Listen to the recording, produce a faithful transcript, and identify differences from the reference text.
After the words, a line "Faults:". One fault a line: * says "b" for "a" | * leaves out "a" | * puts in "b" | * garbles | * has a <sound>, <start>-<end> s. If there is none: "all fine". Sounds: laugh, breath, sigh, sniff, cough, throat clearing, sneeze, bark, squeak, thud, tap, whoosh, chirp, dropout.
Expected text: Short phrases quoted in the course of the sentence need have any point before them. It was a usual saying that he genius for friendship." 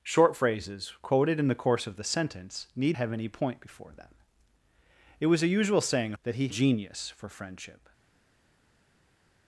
Short phrases quoted in the course of the sentence need have any point before them. It was a usual saying that he genius for friendship."
Faults:
all fine